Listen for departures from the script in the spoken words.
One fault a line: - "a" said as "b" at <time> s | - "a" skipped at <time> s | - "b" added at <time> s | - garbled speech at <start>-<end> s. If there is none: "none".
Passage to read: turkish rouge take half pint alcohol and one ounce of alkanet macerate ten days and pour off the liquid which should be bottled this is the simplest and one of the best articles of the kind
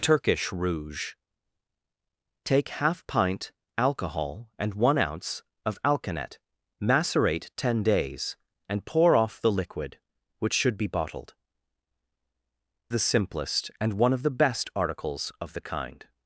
- "this is" skipped at 11.3 s